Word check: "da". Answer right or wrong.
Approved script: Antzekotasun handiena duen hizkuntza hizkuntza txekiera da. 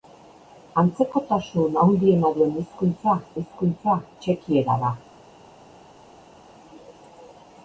right